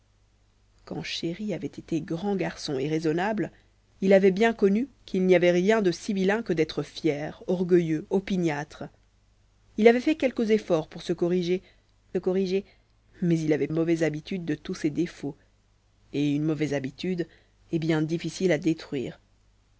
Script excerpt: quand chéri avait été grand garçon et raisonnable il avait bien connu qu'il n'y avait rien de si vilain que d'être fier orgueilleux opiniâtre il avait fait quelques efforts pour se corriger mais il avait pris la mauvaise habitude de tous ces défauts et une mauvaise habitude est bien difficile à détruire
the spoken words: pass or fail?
fail